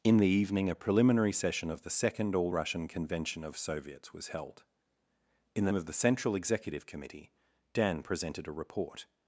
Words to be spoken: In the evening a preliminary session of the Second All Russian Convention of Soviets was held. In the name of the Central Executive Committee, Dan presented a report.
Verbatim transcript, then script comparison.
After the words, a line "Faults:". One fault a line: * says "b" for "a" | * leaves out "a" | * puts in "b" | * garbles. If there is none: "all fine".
In the evening a preliminary session of the Second All Russian Convention of Soviets was held. In the of the Central Executive Committee, Dan presented a report.
Faults:
* leaves out "name"